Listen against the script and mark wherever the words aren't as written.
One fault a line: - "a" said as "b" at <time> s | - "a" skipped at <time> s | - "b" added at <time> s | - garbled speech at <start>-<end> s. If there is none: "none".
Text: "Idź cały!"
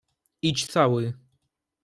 none